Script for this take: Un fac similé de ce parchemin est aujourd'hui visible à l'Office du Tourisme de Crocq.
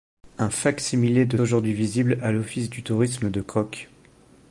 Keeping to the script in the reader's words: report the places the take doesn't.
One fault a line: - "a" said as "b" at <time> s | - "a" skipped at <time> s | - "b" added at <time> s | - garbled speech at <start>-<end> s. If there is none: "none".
- "ce parchemin est" skipped at 1.4 s